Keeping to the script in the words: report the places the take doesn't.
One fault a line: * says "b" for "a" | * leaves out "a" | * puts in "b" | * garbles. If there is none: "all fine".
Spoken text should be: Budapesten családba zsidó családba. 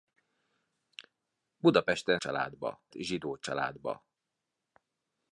all fine